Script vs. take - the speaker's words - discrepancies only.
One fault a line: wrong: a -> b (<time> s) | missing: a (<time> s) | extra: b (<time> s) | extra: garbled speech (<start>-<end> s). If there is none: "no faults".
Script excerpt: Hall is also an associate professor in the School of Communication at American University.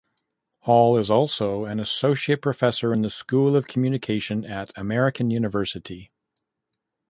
no faults